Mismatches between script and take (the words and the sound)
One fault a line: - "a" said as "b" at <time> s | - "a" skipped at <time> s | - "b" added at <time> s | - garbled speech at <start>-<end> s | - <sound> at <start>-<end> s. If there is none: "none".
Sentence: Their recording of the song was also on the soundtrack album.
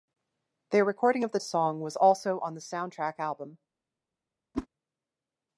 - whoosh at 4.5-4.7 s